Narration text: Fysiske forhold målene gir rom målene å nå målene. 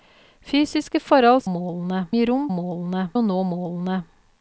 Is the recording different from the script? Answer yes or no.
no